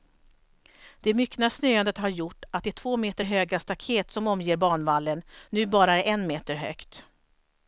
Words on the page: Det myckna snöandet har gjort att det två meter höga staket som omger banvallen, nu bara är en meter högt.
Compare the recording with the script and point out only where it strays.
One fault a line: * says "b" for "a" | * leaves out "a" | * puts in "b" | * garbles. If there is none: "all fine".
all fine